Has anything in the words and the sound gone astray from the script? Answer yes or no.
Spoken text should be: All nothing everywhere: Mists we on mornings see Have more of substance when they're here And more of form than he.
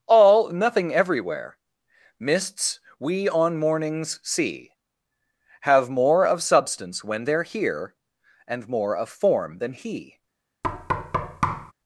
yes